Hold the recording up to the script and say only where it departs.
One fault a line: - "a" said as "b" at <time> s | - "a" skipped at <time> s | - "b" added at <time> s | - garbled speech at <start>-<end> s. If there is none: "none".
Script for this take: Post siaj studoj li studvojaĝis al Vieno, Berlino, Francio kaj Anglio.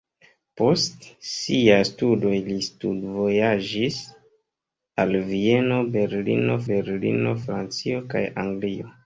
- "Berlino" added at 6.7 s